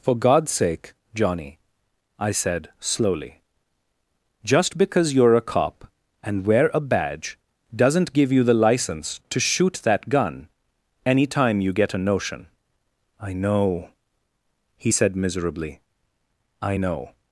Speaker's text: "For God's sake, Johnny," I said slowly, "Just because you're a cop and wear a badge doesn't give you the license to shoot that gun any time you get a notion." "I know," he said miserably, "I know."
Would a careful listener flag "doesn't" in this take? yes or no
no